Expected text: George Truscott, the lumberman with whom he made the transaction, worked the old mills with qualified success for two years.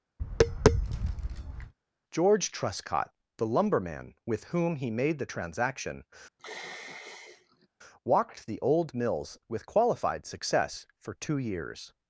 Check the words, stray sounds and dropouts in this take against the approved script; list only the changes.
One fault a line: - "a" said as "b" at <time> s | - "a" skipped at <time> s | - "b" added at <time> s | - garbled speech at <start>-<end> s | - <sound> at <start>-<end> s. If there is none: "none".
- tap at 0.2-1.7 s
- sigh at 6.4-7.7 s
- "worked" said as "walked" at 8.0 s